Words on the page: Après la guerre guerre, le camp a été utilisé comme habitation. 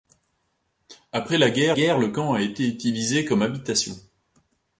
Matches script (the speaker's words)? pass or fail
pass